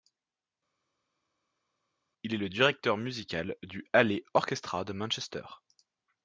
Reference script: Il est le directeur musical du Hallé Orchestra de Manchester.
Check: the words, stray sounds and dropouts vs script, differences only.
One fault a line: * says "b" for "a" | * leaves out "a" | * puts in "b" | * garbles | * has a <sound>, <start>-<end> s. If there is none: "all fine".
all fine